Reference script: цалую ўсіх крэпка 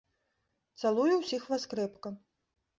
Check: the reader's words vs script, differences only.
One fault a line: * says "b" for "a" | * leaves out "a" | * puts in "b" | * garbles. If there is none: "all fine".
* puts in "вас"